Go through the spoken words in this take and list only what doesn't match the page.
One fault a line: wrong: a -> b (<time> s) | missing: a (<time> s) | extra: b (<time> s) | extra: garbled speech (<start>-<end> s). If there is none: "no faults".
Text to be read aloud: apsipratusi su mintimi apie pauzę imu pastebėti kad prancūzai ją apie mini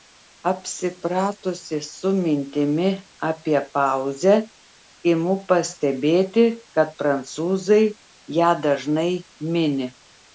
wrong: apie -> dažnai (8.7 s)